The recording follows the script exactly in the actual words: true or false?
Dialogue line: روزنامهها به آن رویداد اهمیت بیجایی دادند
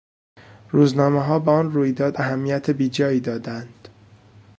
true